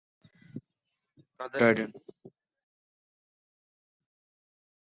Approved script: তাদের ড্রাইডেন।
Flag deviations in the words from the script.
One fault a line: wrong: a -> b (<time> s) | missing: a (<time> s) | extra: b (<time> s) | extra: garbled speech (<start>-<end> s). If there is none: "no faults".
no faults